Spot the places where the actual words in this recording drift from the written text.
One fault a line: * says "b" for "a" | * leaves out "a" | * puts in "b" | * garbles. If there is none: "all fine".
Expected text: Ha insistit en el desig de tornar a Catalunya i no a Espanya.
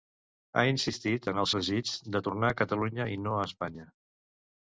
all fine